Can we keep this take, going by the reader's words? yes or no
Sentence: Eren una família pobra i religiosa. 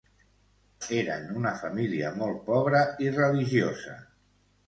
no